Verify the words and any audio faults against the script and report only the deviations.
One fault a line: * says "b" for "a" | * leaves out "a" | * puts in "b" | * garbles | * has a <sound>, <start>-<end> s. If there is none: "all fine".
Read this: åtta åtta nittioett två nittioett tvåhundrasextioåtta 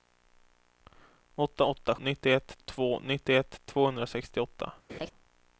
* has a laugh, 4.9-5.1 s